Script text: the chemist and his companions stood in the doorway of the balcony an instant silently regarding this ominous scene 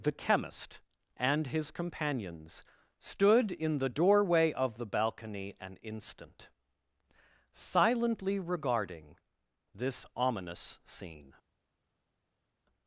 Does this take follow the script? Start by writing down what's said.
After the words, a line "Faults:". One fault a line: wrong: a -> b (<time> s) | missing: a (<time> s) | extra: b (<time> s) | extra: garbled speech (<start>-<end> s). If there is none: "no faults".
the chemist and his companions stood in the doorway of the balcony an instant silently regarding this ominous scene
Faults:
no faults